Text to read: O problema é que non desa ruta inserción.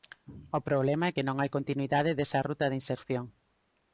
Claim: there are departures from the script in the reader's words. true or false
true